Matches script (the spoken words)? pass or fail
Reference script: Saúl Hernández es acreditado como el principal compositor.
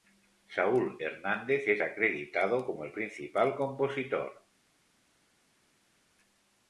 pass